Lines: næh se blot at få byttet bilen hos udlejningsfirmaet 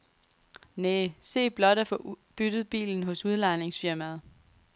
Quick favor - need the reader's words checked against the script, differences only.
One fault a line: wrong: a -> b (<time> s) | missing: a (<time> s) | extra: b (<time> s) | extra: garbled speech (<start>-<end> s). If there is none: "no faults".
no faults